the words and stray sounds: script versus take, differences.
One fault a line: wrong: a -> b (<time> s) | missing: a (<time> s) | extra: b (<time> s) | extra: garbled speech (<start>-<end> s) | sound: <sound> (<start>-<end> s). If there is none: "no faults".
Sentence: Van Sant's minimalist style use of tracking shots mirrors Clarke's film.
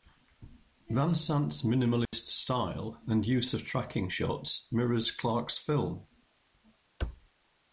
sound: dropout (2.1-2.1 s)
extra: and (3.0 s)